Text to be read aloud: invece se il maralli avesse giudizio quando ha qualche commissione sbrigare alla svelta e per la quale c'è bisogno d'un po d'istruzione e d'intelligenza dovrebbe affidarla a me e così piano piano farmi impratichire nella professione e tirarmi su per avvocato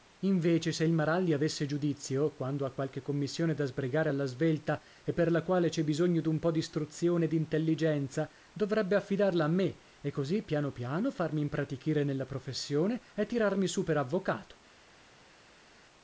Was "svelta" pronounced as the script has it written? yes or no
yes